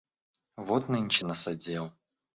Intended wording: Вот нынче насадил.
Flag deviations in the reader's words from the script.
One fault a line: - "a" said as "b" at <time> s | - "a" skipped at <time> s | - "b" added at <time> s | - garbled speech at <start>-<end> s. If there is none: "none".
none